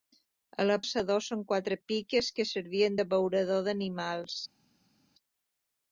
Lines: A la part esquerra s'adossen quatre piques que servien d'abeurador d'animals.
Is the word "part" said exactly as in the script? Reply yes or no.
no